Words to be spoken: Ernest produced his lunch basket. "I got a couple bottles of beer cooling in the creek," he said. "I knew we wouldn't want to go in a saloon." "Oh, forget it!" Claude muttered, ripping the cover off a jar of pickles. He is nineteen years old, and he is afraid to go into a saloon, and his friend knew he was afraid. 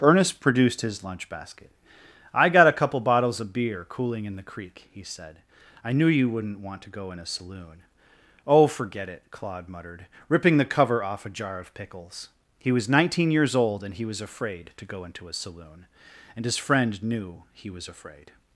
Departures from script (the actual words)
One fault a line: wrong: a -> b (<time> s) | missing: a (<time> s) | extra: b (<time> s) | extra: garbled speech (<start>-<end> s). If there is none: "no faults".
wrong: we -> you (6.1 s)
wrong: is -> was (12.7 s)
wrong: is -> was (14.1 s)